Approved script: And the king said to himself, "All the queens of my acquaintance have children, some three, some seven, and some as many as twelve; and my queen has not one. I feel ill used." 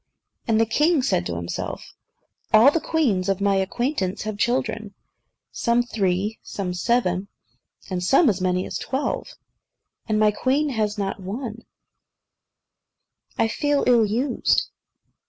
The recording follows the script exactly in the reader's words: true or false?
true